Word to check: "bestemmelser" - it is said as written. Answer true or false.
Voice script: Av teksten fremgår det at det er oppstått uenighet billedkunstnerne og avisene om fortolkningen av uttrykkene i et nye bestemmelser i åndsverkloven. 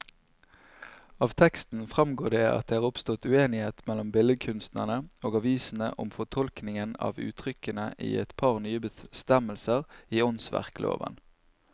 true